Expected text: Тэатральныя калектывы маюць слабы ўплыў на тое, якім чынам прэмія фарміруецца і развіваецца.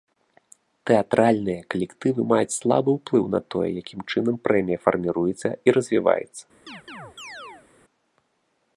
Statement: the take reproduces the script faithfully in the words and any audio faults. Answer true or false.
false